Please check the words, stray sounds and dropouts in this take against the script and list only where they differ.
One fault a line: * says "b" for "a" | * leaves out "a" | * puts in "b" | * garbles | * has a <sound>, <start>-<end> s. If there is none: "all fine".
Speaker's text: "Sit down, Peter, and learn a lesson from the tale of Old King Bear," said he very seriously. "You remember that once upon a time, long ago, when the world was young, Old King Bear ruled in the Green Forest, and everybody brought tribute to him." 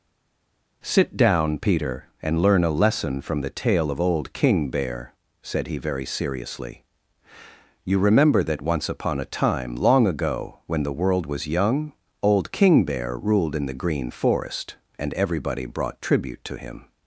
all fine